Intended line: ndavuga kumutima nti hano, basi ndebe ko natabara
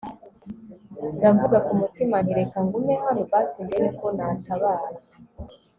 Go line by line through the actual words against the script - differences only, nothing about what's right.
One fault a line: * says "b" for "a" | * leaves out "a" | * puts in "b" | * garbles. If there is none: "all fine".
* puts in "reka ngume"